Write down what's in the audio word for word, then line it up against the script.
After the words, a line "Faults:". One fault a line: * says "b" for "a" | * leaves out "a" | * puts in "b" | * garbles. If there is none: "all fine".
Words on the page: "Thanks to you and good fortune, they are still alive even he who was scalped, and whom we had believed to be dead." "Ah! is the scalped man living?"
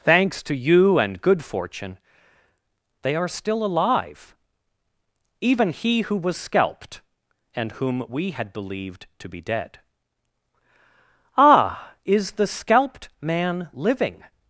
"Thanks to you and good fortune, they are still alive even he who was scalped, and whom we had believed to be dead." "Ah! is the scalped man living?"
Faults:
all fine